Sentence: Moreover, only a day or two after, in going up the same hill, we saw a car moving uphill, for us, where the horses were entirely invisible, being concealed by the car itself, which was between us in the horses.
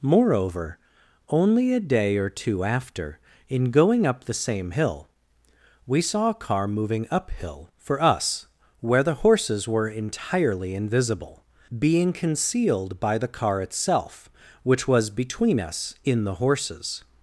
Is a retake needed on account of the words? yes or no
no